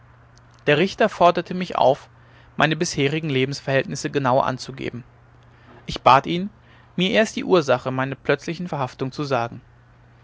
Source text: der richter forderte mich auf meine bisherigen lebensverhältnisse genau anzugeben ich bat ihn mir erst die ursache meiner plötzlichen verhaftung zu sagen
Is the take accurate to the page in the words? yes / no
yes